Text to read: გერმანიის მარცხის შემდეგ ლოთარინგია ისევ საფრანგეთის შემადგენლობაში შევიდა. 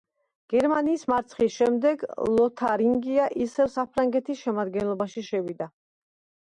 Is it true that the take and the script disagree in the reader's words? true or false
false